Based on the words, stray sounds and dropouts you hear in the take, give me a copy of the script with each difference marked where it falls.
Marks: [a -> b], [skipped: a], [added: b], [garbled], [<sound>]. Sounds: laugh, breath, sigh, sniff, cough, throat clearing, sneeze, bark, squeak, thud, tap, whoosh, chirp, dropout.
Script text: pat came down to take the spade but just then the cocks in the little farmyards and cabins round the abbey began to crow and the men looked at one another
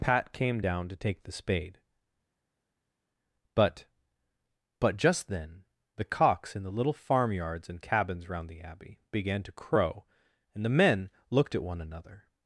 pat came down to take the spade but [added: but] just then the cocks in the little farmyards and cabins round the abbey began to crow and the men looked at one another